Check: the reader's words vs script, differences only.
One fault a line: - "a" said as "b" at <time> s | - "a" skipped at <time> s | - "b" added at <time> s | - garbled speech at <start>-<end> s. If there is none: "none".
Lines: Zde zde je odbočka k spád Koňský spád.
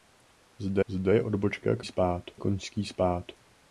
none